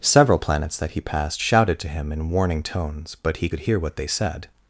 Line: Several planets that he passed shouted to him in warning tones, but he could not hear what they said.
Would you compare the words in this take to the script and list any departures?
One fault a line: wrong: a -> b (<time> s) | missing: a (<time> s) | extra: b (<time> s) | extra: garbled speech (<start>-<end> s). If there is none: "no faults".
missing: not (3.6 s)